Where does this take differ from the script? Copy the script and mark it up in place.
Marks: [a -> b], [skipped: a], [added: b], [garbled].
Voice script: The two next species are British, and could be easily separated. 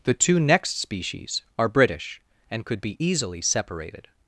The two next species are British, and could be easily separated.